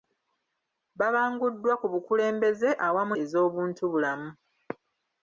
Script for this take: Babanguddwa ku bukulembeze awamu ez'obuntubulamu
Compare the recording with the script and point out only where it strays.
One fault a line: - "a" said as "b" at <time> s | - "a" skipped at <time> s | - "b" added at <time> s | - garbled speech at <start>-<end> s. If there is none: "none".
none